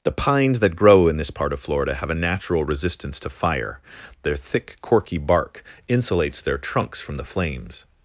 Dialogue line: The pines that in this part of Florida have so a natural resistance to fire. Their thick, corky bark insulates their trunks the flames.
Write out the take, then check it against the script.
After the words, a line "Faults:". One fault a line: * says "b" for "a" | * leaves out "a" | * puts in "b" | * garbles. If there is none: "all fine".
The pines that grow in this part of Florida have a natural resistance to fire. Their thick, corky bark insulates their trunks from the flames.
Faults:
* puts in "grow"
* leaves out "so"
* puts in "from"